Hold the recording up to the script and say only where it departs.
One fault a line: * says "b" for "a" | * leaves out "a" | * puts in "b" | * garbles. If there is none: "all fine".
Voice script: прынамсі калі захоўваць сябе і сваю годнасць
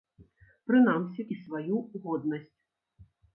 * leaves out "калі захоўваць сябе"